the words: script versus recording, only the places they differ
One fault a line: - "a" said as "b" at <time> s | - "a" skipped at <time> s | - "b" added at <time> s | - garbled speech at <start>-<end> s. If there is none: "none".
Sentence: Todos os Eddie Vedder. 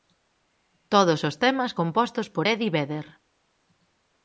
- "temas compostos por" added at 1.4 s